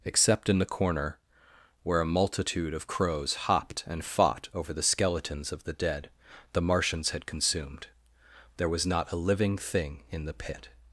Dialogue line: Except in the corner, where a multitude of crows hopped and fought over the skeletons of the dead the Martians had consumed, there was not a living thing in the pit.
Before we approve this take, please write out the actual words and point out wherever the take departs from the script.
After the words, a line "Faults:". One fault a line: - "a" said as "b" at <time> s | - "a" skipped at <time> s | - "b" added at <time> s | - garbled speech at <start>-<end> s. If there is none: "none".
Except in the corner, where a multitude of crows hopped and fought over the skeletons of the dead the Martians had consumed, there was not a living thing in the pit.
Faults:
none